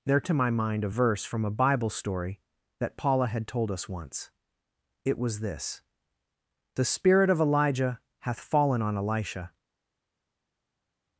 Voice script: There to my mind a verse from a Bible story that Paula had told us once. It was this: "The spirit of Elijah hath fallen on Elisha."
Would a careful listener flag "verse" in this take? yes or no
no